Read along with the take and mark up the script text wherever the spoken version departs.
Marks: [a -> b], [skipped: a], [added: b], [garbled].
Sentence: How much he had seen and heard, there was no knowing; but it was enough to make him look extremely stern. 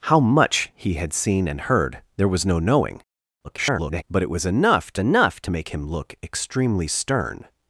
How much he had seen and heard, there was no knowing; [garbled] but it was enough to [added: enough to] make him look extremely stern.